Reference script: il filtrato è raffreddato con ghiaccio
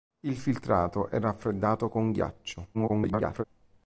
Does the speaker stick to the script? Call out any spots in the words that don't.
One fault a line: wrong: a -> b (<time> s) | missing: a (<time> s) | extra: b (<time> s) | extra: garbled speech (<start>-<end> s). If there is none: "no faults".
extra: garbled speech (2.7-3.4 s)